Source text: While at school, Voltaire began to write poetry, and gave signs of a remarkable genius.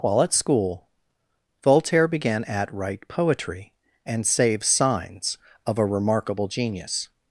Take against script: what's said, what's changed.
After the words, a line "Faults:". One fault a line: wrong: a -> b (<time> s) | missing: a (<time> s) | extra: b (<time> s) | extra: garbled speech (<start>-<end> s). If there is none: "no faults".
While at school, Voltaire began at write poetry, and save signs of a remarkable genius.
Faults:
wrong: to -> at (2.5 s)
wrong: gave -> save (4.2 s)